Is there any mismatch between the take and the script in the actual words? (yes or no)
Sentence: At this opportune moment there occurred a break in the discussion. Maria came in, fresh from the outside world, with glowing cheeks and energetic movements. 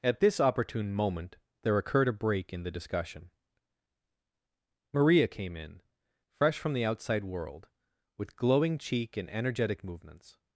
yes